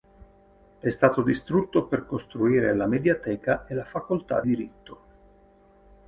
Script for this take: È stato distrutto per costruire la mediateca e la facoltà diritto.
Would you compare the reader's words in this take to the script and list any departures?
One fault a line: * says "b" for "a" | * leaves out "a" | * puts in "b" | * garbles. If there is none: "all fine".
all fine